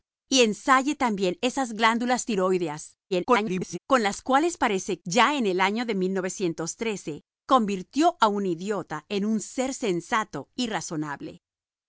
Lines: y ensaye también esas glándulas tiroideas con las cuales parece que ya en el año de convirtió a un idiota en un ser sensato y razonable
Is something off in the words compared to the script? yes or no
yes